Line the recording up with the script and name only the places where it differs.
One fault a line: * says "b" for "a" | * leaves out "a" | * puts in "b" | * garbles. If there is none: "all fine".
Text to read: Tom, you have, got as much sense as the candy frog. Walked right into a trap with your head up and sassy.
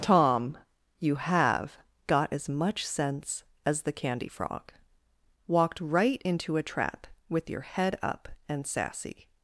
all fine